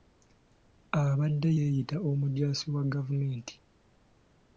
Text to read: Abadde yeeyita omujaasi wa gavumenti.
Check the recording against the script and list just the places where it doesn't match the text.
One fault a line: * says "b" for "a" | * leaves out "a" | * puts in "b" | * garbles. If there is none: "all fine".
all fine